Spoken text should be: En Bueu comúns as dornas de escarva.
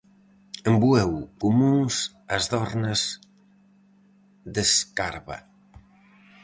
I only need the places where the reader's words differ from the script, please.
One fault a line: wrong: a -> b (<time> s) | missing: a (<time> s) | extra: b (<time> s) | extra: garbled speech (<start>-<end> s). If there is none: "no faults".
no faults